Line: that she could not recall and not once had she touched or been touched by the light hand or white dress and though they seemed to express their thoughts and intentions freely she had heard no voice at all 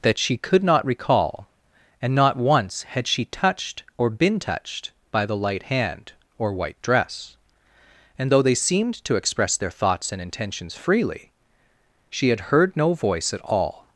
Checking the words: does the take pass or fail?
pass